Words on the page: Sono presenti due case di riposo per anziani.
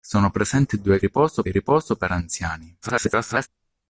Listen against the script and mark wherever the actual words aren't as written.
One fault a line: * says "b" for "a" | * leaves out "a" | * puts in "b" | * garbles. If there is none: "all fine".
* says "riposo" for "case"
* garbles